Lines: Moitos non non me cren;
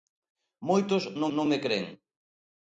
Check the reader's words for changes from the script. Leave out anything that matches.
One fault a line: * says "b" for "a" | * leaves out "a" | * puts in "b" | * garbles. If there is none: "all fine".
all fine